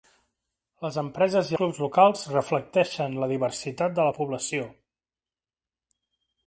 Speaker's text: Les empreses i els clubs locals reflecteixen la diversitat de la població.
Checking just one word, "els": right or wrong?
wrong